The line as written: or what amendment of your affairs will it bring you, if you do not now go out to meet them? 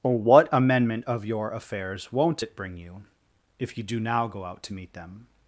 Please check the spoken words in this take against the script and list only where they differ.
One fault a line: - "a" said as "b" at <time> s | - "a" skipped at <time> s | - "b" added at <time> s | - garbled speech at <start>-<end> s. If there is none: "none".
- "will" said as "won't" at 2.1 s
- "not" skipped at 4.0 s